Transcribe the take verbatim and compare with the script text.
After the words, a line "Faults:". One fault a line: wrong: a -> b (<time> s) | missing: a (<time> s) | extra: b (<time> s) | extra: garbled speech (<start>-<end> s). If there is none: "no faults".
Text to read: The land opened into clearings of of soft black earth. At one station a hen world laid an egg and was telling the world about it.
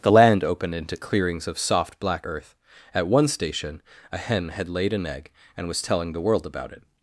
The land opened into clearings of soft black earth. At one station a hen had laid an egg and was telling the world about it.
Faults:
missing: of (1.6 s)
wrong: world -> had (4.5 s)